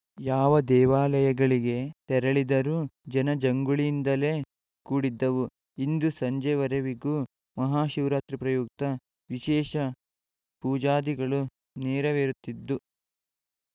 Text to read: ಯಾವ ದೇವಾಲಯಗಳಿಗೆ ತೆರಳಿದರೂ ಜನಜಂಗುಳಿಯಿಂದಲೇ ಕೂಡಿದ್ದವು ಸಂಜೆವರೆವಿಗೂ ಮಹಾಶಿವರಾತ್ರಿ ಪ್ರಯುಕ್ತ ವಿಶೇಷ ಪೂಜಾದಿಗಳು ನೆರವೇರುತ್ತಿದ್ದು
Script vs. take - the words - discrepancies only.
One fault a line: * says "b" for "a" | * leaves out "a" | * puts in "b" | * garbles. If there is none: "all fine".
* puts in "ಇಂದು"